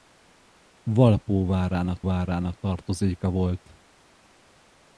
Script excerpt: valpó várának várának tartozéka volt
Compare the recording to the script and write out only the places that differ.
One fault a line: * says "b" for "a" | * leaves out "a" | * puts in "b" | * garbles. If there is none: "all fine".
all fine